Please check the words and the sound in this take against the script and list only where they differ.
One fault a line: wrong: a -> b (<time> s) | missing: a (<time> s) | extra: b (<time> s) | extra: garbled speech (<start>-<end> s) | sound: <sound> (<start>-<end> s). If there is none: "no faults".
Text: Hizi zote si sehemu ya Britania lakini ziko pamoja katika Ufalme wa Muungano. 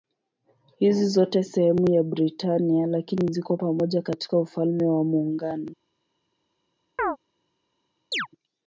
missing: si (1.4 s)
sound: chirp (7.0-7.2 s)
sound: chirp (8.1-8.3 s)